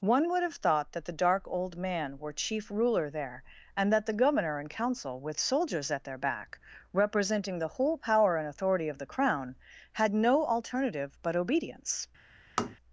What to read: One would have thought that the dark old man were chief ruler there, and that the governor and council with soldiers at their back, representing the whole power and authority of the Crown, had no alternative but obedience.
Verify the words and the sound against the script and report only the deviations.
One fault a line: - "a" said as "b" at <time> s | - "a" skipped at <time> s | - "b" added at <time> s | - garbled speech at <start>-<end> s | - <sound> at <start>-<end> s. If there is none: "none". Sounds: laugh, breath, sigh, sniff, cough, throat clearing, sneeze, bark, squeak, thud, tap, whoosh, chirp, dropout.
- tap at 12.6-12.8 s